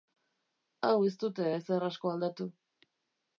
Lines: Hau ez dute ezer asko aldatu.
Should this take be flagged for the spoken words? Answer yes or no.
no